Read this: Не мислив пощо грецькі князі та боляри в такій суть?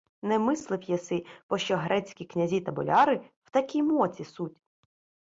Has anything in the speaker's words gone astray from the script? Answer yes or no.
yes